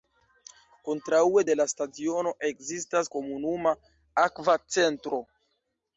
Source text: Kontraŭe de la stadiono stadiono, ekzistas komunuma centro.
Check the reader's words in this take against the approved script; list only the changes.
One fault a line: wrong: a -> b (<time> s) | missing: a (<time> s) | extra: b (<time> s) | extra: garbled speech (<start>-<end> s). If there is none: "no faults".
missing: stadiono (2.3 s)
extra: akva (4.2 s)